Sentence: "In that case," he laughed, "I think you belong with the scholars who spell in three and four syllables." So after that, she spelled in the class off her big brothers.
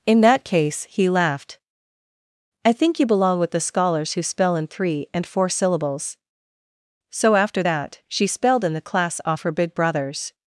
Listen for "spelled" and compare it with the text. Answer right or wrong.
right